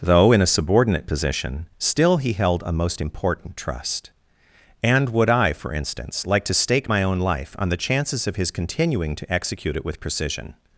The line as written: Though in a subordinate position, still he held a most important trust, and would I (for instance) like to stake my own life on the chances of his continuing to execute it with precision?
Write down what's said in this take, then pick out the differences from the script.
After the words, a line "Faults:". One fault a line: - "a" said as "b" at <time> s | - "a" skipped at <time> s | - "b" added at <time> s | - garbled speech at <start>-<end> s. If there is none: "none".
Though in a subordinate position, still he held a most important trust, and would I (for instance) like to stake my own life on the chances of his continuing to execute it with precision?
Faults:
none